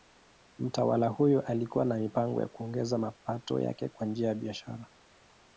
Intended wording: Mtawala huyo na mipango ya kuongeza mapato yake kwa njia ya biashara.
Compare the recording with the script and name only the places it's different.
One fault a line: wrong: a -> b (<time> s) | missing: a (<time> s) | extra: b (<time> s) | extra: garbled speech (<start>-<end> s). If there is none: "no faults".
extra: alikuwa (1.4 s)